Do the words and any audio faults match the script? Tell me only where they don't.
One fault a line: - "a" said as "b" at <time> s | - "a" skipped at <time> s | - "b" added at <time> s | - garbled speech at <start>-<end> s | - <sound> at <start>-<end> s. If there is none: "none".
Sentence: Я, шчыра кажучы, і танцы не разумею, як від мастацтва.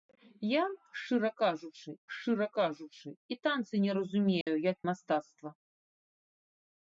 - "шчыра кажучы" added at 2.2 s
- dropout at 4.4-4.5 s
- "від" skipped at 4.8 s